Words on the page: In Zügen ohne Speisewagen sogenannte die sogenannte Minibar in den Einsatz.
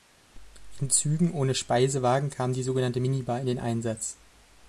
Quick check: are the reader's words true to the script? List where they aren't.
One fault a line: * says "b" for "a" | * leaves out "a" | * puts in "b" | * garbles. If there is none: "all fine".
* says "kam" for "sogenannte"